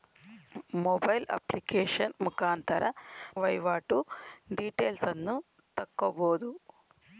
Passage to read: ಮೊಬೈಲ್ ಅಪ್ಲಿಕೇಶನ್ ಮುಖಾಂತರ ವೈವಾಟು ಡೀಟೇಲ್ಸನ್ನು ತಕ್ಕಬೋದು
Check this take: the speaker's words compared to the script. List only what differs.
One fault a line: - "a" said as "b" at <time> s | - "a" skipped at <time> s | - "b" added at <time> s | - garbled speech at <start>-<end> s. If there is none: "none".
none